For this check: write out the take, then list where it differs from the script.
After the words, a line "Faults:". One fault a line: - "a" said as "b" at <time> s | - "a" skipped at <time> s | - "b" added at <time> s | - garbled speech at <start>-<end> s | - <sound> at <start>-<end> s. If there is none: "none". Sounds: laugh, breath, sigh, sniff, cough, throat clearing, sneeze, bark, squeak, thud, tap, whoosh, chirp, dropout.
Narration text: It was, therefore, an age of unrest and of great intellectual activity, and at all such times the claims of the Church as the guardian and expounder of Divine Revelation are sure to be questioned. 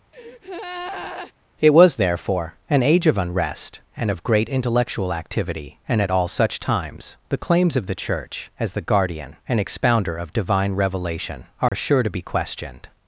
It was, therefore, an age of unrest and of great intellectual activity, and at all such times the claims of the Church as the guardian and expounder of Divine Revelation are sure to be questioned.
Faults:
- breath at 0.1-1.3 s
- dropout at 11.7-11.7 s